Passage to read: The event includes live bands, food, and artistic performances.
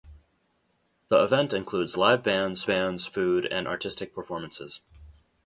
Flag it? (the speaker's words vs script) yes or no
yes